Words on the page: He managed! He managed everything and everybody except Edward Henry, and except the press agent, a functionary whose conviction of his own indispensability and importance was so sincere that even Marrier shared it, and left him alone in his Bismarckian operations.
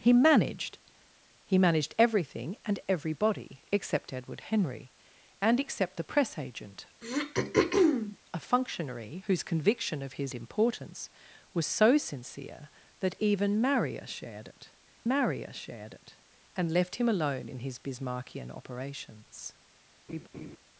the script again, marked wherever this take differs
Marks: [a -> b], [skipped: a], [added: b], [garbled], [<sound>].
He managed! He managed everything and everybody except Edward Henry, and except the press agent, [throat clearing] a functionary whose conviction of his [skipped: own indispensability and] importance was so sincere that even Marrier shared it, [added: Marrier shared it] and left him alone in his Bismarckian operations. [laugh]